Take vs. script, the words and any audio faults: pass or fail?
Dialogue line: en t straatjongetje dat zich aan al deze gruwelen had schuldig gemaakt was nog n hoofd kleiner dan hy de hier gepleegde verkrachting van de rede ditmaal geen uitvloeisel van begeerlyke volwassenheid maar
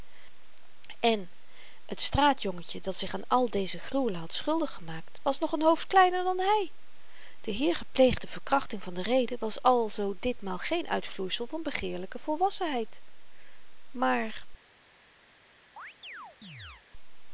fail